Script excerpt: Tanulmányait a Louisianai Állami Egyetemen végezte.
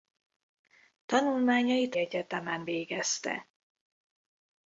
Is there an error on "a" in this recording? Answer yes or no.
yes